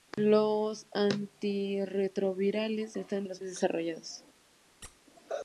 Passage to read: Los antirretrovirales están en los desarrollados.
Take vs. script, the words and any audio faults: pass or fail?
fail